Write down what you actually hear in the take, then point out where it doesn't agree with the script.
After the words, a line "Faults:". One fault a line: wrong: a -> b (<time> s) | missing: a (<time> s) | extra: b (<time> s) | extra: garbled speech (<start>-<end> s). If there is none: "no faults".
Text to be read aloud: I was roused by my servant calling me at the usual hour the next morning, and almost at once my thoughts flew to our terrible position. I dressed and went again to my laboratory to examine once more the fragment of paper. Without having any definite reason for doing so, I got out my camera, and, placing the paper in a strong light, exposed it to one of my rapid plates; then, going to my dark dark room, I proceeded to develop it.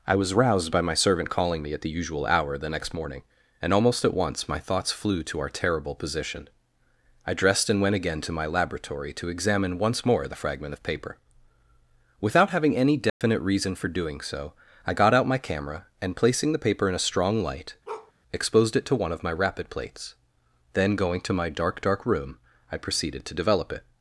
I was roused by my servant calling me at the usual hour the next morning, and almost at once my thoughts flew to our terrible position. I dressed and went again to my laboratory to examine once more the fragment of paper. Without having any definite reason for doing so, I got out my camera, and, placing the paper in a strong light, exposed it to one of my rapid plates; then, going to my dark dark room, I proceeded to develop it.
Faults:
no faults